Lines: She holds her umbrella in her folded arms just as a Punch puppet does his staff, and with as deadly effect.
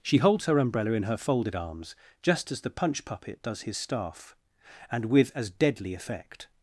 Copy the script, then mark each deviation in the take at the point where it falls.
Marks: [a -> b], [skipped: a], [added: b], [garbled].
She holds her umbrella in her folded arms just as [a -> the] Punch puppet does his staff, and with as deadly effect.